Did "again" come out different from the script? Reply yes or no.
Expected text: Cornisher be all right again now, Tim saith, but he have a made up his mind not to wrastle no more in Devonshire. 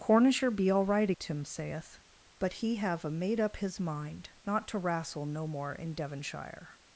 yes